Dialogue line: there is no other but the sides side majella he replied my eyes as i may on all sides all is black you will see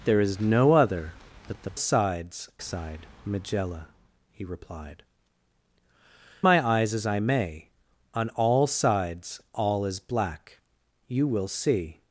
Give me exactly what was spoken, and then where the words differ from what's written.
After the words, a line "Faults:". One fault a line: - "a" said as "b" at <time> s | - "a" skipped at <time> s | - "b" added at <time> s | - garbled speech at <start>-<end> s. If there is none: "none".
there is no other but the sides side majella he replied my eyes as i may on all sides all is black you will see
Faults:
none